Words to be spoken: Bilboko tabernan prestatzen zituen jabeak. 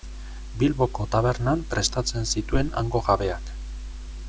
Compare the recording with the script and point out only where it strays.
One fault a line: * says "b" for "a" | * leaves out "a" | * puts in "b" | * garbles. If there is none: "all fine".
* puts in "hango"